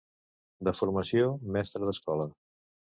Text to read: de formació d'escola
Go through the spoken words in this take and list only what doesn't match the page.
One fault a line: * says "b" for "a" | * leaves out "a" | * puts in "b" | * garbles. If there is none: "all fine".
* puts in "mestre"